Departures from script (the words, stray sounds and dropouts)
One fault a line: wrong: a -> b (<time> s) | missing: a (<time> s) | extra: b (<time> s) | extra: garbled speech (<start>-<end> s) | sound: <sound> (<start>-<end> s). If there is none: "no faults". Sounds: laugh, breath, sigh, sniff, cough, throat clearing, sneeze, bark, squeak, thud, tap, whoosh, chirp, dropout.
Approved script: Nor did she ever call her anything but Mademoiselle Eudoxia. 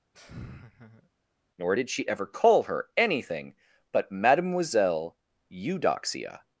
sound: laugh (0.1-1.1 s)